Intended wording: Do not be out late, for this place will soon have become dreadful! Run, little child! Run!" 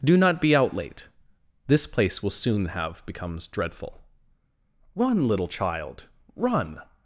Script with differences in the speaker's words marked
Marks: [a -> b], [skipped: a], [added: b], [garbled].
Do not be out late, [skipped: for] this place will soon have [become -> becomes] dreadful! Run, little child! Run!"